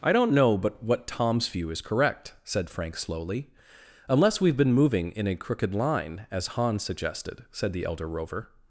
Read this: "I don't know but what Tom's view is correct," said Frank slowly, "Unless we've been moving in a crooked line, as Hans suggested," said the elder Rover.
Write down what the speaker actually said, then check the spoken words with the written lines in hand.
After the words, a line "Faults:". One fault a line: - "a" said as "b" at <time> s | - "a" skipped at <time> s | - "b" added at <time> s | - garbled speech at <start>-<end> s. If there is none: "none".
"I don't know but what Tom's view is correct," said Frank slowly, "Unless we've been moving in a crooked line, as Hans suggested," said the elder Rover.
Faults:
none